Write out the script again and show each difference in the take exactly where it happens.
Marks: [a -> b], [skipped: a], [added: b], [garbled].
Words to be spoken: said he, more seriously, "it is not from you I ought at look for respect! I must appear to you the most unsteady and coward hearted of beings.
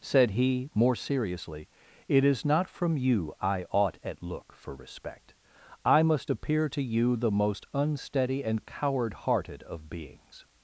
said he, more seriously, "it is not from you I ought at look for respect! I must appear to you the most unsteady and coward hearted of beings.